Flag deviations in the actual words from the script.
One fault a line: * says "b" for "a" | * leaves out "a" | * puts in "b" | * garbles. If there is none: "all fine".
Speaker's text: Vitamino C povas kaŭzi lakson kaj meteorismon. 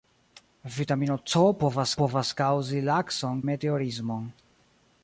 * puts in "povas"
* leaves out "kaj"